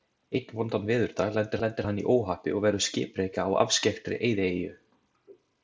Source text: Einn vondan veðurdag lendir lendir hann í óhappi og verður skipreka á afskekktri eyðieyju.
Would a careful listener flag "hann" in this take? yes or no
no